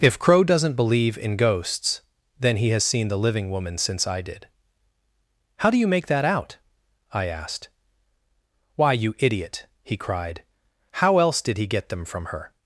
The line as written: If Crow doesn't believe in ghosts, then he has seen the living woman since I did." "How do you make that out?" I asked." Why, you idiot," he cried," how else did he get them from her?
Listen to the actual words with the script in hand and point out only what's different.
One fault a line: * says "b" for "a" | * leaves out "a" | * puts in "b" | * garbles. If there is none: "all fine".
all fine